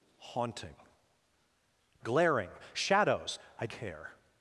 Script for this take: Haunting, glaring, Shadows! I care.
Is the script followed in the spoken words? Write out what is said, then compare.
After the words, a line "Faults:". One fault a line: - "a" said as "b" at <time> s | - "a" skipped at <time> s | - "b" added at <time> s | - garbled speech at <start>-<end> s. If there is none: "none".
Haunting, glaring, Shadows! I care.
Faults:
none